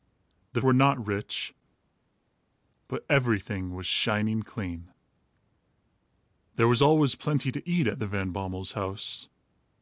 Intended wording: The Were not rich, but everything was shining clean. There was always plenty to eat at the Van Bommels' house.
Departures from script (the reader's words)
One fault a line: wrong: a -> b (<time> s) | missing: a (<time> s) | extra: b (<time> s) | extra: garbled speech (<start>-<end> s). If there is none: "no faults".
no faults